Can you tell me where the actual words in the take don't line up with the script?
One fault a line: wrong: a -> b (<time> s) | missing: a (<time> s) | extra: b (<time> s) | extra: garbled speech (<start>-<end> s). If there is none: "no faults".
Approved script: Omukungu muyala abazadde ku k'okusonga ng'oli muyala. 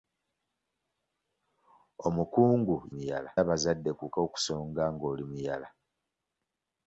no faults